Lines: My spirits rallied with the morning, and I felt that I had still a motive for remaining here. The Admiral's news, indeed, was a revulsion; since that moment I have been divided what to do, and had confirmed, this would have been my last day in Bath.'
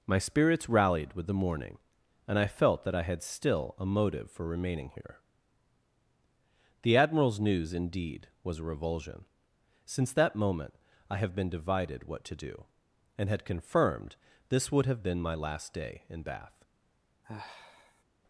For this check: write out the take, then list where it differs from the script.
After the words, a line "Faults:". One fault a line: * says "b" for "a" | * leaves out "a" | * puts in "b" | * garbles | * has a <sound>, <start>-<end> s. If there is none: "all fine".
My spirits rallied with the morning, and I felt that I had still a motive for remaining here. The Admiral's news, indeed, was a revulsion; since that moment I have been divided what to do, and had confirmed, this would have been my last day in Bath.'
Faults:
* has a sigh, 17.2-18.0 s